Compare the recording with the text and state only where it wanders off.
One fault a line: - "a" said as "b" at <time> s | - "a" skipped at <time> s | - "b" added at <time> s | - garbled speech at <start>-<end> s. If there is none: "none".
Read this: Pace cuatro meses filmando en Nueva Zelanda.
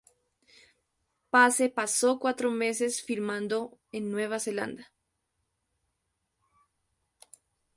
- "pasó" added at 1.7 s